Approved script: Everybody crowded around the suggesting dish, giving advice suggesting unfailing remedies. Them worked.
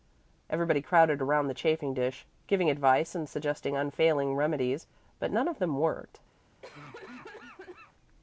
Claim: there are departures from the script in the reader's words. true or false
true